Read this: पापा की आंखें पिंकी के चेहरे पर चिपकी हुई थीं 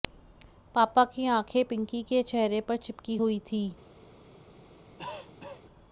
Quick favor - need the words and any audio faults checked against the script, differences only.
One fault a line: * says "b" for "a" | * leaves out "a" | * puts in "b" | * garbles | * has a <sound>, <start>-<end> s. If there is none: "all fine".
* has a cough, 5.0-5.6 s